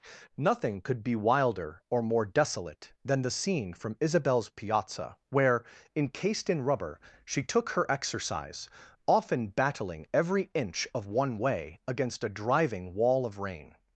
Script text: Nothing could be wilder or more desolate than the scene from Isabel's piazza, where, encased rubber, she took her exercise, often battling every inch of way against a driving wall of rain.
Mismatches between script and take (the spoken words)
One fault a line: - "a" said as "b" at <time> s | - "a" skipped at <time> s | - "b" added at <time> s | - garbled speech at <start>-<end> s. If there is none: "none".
- "in" added at 6.5 s
- "one" added at 11.1 s